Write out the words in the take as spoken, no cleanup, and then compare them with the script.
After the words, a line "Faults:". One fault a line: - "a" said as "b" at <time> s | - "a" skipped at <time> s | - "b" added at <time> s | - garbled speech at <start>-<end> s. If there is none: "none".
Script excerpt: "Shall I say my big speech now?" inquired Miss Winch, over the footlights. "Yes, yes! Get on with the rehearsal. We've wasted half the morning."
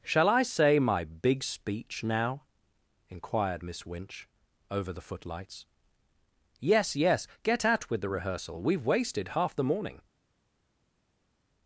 "Shall I say my big speech now?" inquired Miss Winch, over the footlights. "Yes, yes! Get at with the rehearsal. We've wasted half the morning."
Faults:
- "on" said as "at" at 7.7 s